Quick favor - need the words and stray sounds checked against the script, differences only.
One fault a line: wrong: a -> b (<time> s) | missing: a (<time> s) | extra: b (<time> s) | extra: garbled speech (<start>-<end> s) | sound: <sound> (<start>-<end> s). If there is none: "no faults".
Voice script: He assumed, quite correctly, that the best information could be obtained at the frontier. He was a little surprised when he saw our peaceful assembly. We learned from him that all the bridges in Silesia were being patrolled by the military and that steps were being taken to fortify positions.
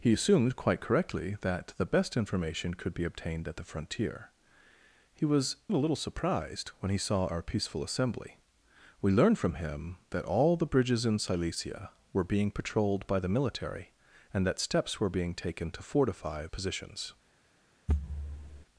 sound: thud (17.9-18.6 s)